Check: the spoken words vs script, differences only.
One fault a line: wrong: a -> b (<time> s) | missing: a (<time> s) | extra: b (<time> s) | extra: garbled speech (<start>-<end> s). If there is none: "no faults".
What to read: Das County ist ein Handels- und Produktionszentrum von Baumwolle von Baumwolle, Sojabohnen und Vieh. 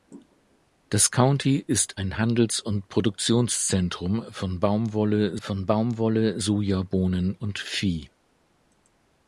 no faults